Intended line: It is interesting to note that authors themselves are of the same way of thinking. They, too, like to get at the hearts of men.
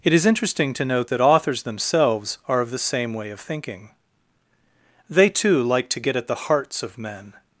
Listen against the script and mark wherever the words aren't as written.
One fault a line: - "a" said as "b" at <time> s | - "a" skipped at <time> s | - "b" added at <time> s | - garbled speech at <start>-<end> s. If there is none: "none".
none